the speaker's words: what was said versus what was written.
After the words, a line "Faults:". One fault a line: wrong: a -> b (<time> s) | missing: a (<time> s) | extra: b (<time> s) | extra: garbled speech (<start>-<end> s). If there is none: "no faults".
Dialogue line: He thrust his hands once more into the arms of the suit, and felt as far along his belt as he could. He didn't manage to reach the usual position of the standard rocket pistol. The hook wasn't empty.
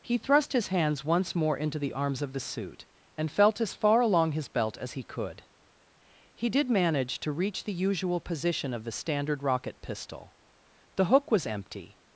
He thrust his hands once more into the arms of the suit, and felt as far along his belt as he could. He did manage to reach the usual position of the standard rocket pistol. The hook was empty.
Faults:
wrong: didn't -> did (6.5 s)
wrong: wasn't -> was (11.3 s)